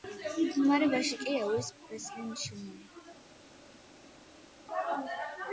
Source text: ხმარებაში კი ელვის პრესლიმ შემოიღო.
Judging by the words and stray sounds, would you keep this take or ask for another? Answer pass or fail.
pass